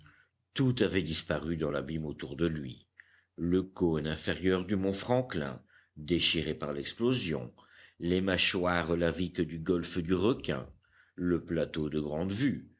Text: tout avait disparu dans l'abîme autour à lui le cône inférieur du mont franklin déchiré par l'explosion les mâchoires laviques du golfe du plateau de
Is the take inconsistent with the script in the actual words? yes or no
yes